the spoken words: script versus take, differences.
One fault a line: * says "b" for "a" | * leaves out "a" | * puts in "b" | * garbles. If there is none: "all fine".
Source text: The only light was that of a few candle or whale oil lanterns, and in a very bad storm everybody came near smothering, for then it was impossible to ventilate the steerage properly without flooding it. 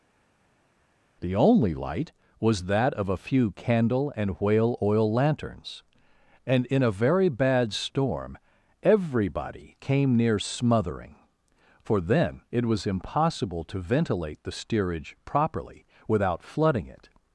* says "and" for "or"